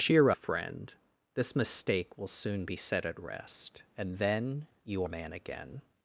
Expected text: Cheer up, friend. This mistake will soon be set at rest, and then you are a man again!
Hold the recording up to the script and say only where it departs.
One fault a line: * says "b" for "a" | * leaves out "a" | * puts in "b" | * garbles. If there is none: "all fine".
* leaves out "up"
* leaves out "are"